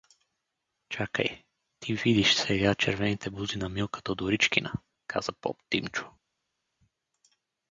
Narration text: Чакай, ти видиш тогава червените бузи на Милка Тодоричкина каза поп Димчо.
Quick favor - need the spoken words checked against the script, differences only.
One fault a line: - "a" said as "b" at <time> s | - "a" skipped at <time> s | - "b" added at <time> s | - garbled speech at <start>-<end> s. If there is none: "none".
- "тогава" said as "сега" at 2.4 s